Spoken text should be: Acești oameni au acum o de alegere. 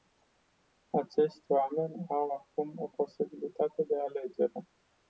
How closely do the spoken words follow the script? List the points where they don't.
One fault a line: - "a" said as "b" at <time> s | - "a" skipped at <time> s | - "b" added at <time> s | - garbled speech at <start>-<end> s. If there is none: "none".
- "posibilitate" added at 2.9 s